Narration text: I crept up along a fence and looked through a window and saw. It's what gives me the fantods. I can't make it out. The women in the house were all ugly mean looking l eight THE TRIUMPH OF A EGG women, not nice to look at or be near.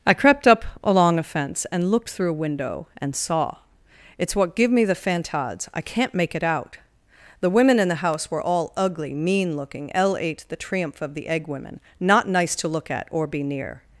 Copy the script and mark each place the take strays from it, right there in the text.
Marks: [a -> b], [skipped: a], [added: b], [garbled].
I crept up along a fence and looked through a window and saw. It's what [gives -> give] me the fantods. I can't make it out. The women in the house were all ugly mean looking l eight THE TRIUMPH OF [A -> THE] EGG women, not nice to look at or be near.